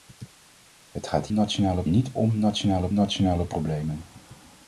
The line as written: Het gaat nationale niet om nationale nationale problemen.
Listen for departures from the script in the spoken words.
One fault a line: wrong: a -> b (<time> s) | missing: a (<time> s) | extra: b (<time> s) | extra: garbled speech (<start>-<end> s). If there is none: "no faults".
no faults